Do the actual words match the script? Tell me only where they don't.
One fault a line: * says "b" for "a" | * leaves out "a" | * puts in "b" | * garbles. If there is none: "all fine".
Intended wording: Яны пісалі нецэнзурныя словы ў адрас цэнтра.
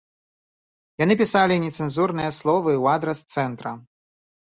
all fine